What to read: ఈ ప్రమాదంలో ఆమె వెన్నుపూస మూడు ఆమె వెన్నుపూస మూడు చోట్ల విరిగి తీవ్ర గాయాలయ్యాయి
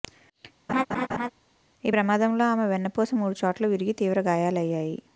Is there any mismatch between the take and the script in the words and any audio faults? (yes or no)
yes